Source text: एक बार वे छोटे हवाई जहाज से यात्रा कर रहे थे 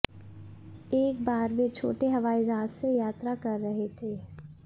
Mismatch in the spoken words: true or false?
false